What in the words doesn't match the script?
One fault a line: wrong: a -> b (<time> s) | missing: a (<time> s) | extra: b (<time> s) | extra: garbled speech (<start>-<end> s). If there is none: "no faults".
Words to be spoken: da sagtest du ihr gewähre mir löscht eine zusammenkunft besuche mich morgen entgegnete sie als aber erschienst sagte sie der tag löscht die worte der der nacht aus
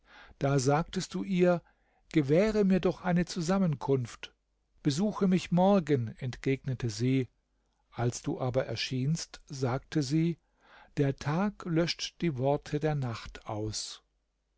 wrong: löscht -> doch (2.8 s)
extra: du (8.2 s)
missing: der (13.0 s)